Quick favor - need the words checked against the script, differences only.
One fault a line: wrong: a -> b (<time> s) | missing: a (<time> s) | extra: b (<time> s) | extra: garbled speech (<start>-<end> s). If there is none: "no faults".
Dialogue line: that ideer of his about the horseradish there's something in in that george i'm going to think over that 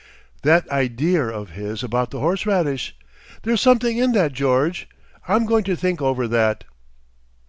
missing: in (4.1 s)